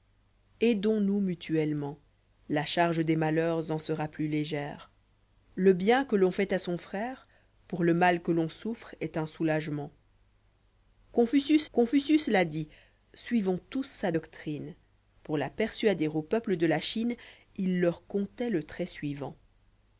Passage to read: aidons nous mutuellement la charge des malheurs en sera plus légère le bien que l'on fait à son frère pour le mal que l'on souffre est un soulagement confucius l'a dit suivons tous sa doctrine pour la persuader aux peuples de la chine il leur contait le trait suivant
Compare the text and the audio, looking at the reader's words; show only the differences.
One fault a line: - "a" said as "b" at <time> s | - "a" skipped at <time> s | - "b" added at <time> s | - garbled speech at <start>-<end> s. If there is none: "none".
- "confucius" added at 11.7 s